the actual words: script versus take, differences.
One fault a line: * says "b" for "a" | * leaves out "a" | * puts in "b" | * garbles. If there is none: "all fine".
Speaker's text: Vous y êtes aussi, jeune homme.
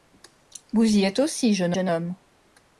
* puts in "jeune"